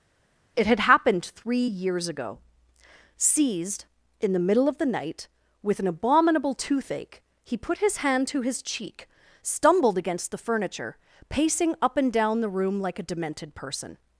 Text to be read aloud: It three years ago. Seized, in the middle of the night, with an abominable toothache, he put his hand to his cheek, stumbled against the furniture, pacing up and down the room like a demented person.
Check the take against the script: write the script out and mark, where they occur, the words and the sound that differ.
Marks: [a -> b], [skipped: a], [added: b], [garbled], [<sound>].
It [added: had happened] three years ago. Seized, in the middle of the night, with an abominable toothache, he put his hand to his cheek, stumbled against the furniture, pacing up and down the room like a demented person.